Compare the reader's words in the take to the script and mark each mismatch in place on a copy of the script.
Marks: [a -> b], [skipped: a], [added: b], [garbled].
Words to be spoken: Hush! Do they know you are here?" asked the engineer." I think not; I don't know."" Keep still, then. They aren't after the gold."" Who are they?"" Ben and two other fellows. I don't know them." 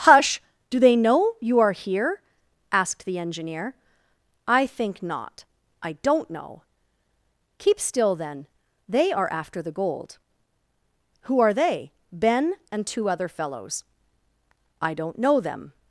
Hush! Do they know you are here?" asked the engineer." I think not; I don't know."" Keep still, then. They [aren't -> are] after the gold."" Who are they?"" Ben and two other fellows. I don't know them."